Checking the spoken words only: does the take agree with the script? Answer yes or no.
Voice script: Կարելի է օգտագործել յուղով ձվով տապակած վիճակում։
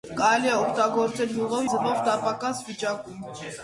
yes